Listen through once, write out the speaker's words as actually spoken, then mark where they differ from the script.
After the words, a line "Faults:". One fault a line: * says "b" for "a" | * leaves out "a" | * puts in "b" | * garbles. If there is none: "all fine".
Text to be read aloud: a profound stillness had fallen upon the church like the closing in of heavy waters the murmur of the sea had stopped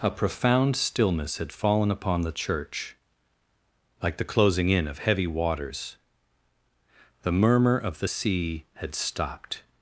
a profound stillness had fallen upon the church like the closing in of heavy waters the murmur of the sea had stopped
Faults:
all fine